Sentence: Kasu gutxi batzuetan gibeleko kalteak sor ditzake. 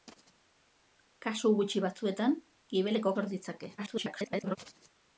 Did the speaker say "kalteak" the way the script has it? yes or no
no